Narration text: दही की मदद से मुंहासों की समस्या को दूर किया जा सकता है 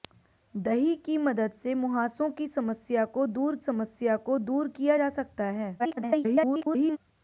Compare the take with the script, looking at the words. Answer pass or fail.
fail